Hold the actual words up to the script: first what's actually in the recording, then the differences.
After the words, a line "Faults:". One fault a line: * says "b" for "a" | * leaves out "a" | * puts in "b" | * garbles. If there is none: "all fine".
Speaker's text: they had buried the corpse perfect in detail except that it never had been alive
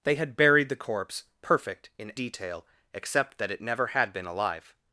they had buried the corpse perfect in detail except that it never had been alive
Faults:
all fine